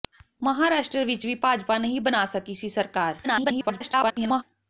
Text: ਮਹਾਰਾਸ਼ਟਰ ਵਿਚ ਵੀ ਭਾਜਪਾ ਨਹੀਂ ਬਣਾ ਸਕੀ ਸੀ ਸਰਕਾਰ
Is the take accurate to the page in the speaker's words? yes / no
no